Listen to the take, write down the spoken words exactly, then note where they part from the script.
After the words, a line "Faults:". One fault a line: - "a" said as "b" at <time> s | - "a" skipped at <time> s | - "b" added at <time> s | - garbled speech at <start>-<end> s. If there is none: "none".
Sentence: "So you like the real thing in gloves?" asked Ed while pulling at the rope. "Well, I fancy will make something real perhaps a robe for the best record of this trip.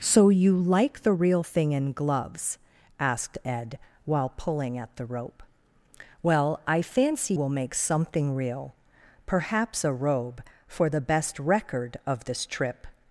"So you like the real thing in gloves?" asked Ed while pulling at the rope. "Well, I fancy will make something real perhaps a robe for the best record of this trip.
Faults:
none